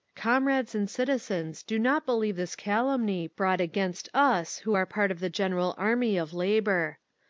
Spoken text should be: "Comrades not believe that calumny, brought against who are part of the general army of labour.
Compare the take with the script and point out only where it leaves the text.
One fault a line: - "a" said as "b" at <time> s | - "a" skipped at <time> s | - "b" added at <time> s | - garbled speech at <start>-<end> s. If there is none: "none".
- "and citizens do" added at 0.7 s
- "that" said as "this" at 2.4 s
- "us" added at 4.2 s